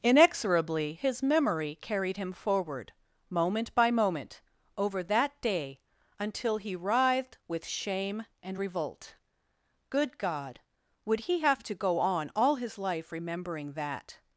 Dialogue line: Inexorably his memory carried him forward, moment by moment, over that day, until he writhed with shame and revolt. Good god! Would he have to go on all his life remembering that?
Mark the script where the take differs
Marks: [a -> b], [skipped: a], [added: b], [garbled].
Inexorably his memory carried him forward, moment by moment, over that day, until he writhed with shame and revolt. Good god! Would he have to go on all his life remembering that?